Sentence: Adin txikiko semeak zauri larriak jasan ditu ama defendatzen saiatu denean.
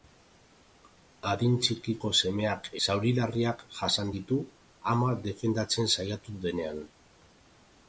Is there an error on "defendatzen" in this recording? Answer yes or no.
no